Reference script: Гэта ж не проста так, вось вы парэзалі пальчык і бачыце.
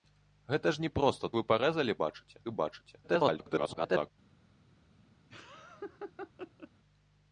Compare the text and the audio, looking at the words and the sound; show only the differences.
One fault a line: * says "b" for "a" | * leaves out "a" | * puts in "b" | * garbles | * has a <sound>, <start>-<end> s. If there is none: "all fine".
* leaves out "так вось"
* says "бачыце" for "пальчык"
* garbles
* has a laugh, 5.3-6.7 s